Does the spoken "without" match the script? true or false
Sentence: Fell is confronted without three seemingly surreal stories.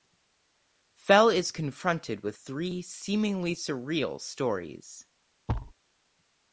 false